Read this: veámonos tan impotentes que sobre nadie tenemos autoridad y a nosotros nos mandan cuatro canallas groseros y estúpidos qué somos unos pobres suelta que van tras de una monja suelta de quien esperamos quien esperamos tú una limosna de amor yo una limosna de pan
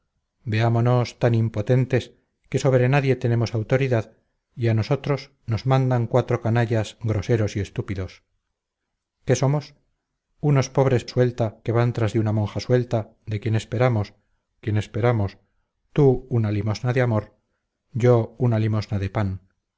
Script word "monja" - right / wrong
right